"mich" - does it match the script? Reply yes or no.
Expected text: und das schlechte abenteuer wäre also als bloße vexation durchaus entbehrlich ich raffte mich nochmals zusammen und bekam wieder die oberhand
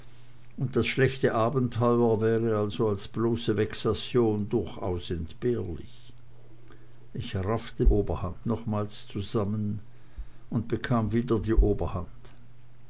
no